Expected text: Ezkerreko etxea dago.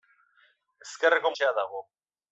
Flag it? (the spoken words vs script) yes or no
no